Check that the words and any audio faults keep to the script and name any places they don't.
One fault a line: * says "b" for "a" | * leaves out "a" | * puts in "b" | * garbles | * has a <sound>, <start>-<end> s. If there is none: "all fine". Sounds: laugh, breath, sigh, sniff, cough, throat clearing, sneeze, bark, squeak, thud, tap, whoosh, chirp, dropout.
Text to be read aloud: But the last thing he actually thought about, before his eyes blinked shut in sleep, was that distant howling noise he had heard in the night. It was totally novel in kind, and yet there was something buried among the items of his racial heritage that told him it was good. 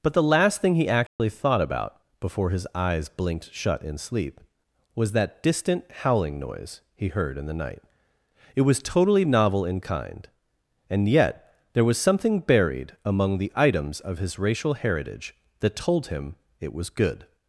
* has a dropout, 1.1-1.2 s
* leaves out "had"